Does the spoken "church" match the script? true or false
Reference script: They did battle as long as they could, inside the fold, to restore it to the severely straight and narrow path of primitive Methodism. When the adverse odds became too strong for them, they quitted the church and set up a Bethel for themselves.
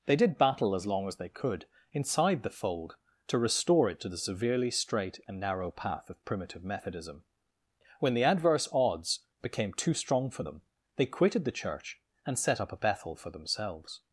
true